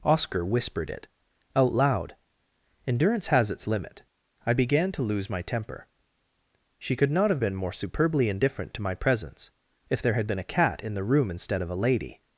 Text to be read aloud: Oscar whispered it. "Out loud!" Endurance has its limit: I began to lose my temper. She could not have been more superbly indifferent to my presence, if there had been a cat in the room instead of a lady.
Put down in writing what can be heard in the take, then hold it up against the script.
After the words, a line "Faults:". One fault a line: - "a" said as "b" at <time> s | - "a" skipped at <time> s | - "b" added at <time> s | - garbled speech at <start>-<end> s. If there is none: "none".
Oscar whispered it. "Out loud!" Endurance has its limit: I began to lose my temper. She could not have been more superbly indifferent to my presence, if there had been a cat in the room instead of a lady.
Faults:
none